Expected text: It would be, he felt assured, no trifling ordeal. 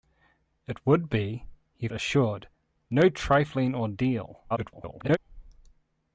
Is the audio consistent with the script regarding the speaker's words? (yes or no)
no